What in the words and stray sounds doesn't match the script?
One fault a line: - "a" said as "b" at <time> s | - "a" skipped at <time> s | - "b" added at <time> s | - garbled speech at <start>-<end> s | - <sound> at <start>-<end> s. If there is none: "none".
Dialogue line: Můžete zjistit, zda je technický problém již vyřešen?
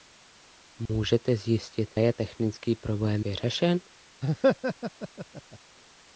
- dropout at 0.9-0.9 s
- "zda" skipped at 1.9 s
- "již" skipped at 3.3 s
- laugh at 4.2-5.6 s